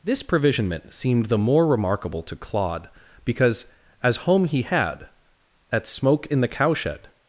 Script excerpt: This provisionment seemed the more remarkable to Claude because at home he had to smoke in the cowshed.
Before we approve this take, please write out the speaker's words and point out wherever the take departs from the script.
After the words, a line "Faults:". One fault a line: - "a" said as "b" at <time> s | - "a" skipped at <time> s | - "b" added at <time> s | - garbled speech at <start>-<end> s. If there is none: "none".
This provisionment seemed the more remarkable to Claude because as home he had at smoke in the cowshed.
Faults:
- "at" said as "as" at 4.0 s
- "to" said as "at" at 5.7 s